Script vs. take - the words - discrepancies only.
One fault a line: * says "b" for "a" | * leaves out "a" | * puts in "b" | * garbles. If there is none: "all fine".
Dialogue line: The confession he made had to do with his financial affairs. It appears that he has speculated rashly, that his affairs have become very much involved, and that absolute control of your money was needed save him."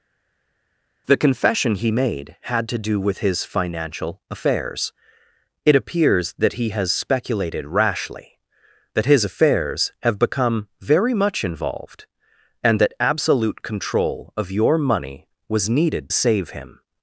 all fine